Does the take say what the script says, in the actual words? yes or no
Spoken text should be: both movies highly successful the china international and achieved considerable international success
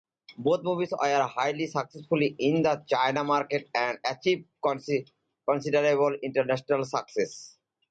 no